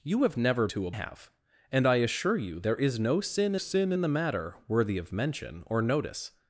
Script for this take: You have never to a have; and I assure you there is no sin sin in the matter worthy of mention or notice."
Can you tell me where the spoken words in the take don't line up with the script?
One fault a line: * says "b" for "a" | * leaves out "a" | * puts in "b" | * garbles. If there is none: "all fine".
all fine